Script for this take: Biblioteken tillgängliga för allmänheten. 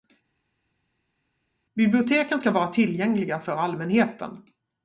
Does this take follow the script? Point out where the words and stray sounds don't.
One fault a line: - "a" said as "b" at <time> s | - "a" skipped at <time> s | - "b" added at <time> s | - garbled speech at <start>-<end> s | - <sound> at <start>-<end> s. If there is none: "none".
- "ska vara" added at 2.4 s